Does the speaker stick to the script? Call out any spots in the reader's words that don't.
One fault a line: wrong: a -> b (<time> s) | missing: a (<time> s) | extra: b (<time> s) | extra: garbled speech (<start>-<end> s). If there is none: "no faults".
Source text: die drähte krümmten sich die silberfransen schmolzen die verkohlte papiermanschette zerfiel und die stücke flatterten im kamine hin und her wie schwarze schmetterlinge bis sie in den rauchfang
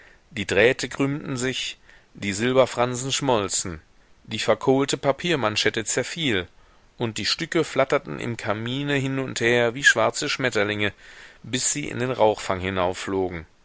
no faults